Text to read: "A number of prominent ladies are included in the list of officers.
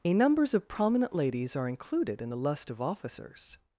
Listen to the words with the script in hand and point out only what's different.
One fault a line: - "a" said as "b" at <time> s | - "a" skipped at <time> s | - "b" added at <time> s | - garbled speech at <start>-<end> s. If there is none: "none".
- "number" said as "numbers" at 0.1 s
- "list" said as "lust" at 2.4 s